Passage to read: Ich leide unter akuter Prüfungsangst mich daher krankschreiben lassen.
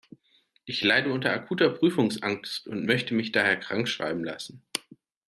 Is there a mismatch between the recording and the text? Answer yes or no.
yes